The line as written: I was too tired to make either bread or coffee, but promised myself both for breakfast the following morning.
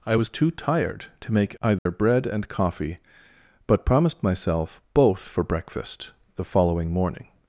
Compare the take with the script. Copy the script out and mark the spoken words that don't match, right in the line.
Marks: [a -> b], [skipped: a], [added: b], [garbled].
I was too tired to make either bread [or -> and] coffee, but promised myself both for breakfast the following morning.